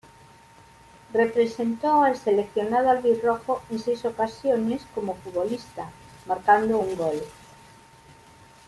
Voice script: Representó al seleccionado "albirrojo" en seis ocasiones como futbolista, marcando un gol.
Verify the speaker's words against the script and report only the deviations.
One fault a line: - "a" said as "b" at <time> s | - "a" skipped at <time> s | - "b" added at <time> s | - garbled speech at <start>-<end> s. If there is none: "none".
none